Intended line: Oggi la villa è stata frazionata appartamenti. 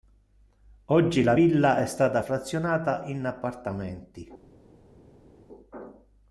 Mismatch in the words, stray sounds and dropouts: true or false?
true